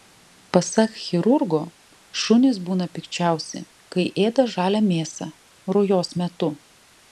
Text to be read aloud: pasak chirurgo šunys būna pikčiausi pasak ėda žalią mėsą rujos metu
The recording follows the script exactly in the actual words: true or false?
false